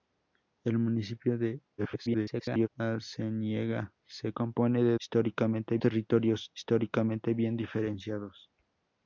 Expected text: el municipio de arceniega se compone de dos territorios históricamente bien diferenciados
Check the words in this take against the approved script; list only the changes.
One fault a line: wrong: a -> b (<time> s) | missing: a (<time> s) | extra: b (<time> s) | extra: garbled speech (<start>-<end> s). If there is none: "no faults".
extra: garbled speech (1.8-2.7 s)
wrong: dos -> históricamente (5.0 s)